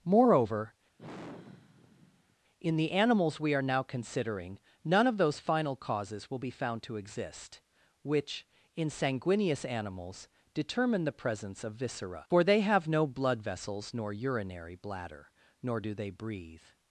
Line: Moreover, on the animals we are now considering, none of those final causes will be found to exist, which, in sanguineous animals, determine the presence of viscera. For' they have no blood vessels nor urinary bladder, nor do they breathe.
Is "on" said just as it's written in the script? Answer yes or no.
no